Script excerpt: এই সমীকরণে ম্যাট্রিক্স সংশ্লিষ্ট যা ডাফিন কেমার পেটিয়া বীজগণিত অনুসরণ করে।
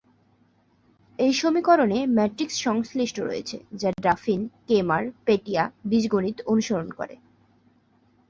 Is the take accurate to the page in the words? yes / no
no